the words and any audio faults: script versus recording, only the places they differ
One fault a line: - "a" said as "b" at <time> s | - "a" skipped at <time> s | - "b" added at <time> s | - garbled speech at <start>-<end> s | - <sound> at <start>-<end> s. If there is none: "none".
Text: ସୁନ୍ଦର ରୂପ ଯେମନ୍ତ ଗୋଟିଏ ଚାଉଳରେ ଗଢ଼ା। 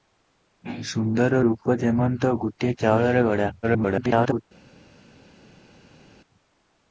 - garbled speech at 3.6-4.4 s